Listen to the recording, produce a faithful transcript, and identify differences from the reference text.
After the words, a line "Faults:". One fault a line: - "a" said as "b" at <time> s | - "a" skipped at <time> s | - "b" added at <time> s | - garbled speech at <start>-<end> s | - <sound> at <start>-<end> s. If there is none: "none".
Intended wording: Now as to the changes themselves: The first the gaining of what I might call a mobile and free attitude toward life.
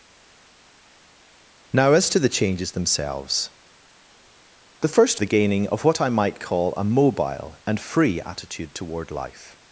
Now as to the changes themselves: The first the gaining of what I might call a mobile and free attitude toward life.
Faults:
none